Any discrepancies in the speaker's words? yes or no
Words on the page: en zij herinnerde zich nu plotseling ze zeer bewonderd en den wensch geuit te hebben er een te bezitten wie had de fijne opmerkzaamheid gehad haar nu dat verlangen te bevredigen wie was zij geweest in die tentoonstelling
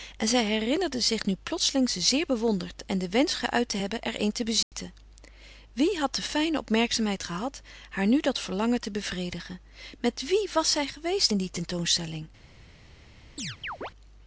yes